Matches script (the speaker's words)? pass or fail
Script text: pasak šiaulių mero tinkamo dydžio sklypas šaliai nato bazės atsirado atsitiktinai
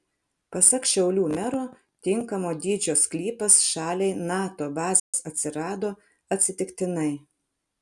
pass